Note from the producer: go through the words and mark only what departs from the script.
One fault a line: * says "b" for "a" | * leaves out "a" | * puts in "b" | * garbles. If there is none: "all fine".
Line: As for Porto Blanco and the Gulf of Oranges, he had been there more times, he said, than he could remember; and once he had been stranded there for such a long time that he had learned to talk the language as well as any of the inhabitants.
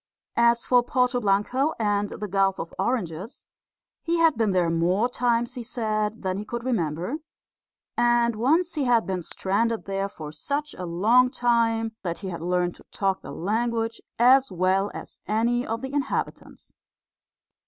all fine